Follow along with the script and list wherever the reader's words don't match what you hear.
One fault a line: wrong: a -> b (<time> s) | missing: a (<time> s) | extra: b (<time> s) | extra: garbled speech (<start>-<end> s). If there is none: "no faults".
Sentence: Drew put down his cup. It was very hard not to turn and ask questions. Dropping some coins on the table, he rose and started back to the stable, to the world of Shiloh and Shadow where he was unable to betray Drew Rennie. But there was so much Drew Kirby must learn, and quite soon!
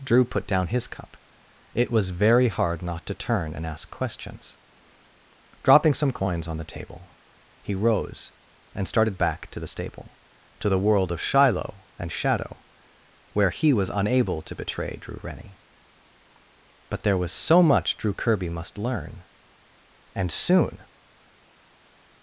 missing: quite (20.3 s)